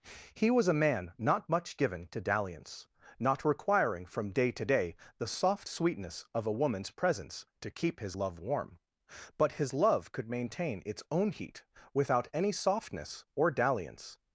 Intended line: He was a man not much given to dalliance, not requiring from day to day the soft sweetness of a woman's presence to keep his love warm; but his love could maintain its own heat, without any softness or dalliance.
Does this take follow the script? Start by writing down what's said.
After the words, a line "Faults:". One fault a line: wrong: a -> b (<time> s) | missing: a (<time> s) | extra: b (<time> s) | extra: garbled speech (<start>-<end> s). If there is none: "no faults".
He was a man not much given to dalliance, not requiring from day to day the soft sweetness of a woman's presence to keep his love warm; but his love could maintain its own heat, without any softness or dalliance.
Faults:
no faults